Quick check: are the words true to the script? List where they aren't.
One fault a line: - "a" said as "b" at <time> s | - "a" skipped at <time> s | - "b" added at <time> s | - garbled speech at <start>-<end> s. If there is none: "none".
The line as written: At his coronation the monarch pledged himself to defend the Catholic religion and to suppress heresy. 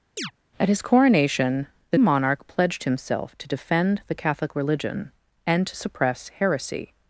none